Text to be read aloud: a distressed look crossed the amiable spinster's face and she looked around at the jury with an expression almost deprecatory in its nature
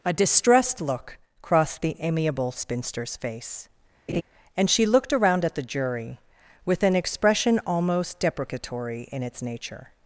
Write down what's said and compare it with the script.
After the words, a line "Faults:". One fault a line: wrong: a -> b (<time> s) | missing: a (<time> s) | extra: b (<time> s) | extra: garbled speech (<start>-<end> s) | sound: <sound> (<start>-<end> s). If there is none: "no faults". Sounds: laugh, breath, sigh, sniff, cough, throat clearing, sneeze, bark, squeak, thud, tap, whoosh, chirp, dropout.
a distressed look crossed the amiable spinster's face and she looked around at the jury with an expression almost deprecatory in its nature
Faults:
sound: laugh (4.1-4.2 s)